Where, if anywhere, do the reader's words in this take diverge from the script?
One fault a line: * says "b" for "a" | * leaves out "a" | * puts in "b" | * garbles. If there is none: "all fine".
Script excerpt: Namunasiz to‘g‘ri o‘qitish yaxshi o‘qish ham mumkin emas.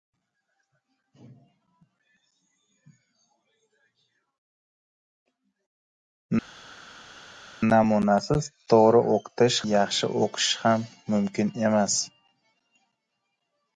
all fine